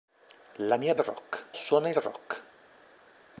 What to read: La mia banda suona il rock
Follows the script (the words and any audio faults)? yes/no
no